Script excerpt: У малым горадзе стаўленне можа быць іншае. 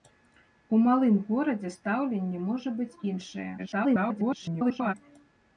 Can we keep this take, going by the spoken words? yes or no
no